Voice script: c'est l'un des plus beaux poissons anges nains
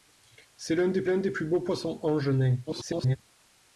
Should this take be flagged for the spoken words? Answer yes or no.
yes